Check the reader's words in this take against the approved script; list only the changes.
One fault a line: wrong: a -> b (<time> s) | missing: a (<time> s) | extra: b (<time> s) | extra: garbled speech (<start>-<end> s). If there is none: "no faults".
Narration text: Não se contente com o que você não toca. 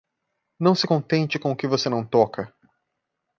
no faults